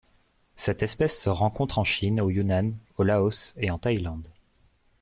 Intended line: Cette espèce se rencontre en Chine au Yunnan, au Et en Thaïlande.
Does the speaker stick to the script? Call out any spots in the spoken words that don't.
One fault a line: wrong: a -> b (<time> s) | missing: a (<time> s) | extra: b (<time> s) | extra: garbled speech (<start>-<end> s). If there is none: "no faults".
extra: Laos (3.0 s)